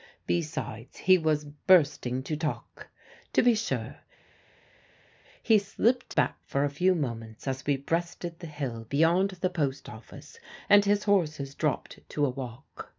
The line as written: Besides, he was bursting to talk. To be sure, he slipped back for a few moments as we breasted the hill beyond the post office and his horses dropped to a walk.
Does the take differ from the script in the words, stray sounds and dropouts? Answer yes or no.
no